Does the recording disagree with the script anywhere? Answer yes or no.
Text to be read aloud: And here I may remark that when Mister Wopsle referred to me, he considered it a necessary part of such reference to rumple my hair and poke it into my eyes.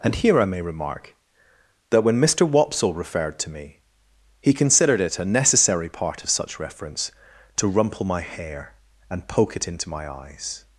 no